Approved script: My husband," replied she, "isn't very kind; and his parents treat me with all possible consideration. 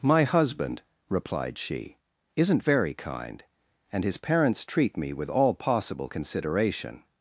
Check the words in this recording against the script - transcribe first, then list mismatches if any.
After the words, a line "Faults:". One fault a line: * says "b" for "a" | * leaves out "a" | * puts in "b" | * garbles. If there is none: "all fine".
My husband," replied she, "isn't very kind; and his parents treat me with all possible consideration.
Faults:
all fine